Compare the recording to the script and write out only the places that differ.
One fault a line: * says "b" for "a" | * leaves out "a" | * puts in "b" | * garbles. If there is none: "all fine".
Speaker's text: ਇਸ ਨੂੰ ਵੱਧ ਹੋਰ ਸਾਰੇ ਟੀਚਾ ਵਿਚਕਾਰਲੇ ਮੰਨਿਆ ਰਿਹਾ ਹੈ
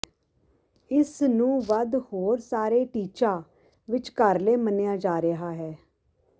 * puts in "ਜਾ"